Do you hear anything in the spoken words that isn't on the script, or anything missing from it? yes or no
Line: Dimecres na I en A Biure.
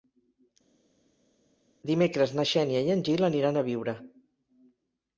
yes